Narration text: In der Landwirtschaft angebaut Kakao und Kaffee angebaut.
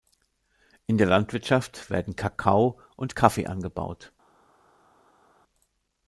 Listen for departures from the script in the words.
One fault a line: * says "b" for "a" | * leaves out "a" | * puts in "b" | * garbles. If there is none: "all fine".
* says "werden" for "angebaut"